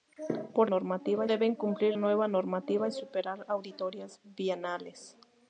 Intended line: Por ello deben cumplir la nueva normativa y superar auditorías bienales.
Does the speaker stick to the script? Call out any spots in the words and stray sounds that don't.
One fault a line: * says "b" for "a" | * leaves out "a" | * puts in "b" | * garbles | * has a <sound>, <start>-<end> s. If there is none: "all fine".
* says "normativa" for "ello"
* leaves out "la"